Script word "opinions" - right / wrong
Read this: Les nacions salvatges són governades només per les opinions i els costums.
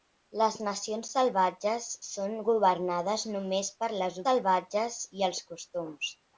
wrong